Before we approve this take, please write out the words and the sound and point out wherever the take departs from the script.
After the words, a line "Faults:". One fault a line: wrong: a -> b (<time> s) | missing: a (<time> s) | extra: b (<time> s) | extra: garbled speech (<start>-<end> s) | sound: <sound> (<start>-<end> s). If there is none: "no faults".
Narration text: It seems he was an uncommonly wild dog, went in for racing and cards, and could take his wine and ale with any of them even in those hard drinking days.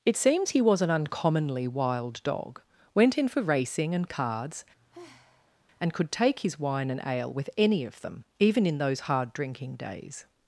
It seems he was an uncommonly wild dog, went in for racing and cards, and could take his wine and ale with any of them even in those hard drinking days.
Faults:
sound: sigh (4.8-5.7 s)